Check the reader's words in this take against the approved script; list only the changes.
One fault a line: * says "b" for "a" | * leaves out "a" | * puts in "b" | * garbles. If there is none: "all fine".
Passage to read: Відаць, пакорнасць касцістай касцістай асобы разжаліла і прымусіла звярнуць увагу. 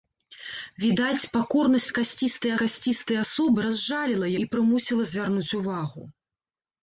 all fine